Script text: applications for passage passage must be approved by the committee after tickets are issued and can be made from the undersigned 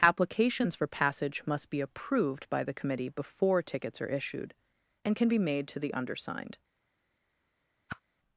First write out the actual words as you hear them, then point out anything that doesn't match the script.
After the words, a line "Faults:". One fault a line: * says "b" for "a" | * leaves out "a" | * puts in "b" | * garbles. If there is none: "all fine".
applications for passage must be approved by the committee before tickets are issued and can be made to the undersigned
Faults:
* leaves out "passage"
* says "before" for "after"
* says "to" for "from"